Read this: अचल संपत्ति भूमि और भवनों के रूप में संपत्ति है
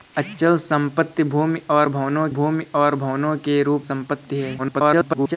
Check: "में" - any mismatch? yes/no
yes